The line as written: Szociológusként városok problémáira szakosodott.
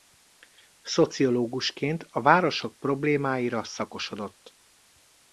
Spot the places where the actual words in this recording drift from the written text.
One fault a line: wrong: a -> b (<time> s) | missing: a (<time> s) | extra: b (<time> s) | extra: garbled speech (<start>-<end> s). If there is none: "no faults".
extra: a (2.1 s)